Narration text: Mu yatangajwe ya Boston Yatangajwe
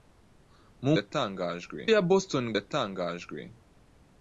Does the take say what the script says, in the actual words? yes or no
yes